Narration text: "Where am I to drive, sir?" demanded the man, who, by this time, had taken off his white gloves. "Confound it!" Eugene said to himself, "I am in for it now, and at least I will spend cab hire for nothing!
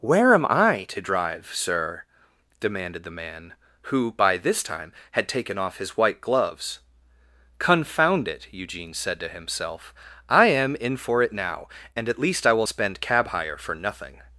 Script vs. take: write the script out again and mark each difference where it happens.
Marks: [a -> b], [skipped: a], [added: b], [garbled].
"Where am I to drive, sir?" demanded the man, who, by this time, had taken off his white gloves. "Confound it!" Eugene said to himself, "I am in for it now, and at least I will spend cab hire for nothing!